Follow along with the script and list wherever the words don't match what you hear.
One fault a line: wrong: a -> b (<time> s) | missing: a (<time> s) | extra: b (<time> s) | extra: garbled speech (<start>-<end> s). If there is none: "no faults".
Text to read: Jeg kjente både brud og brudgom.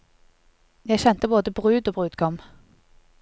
no faults